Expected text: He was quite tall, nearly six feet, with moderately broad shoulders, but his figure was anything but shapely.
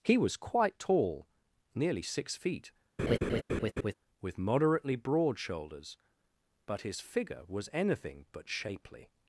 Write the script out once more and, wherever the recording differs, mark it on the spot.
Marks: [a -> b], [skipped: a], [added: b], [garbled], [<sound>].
He was quite tall, nearly six feet, [laugh] with moderately broad shoulders, but his figure was anything but shapely.